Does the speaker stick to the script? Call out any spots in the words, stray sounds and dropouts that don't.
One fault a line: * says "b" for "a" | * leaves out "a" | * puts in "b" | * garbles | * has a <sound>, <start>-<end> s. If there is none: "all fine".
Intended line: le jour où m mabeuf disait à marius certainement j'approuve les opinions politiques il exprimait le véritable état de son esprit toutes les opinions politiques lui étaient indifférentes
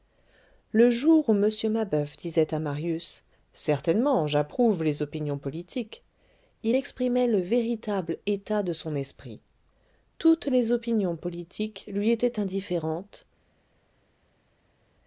all fine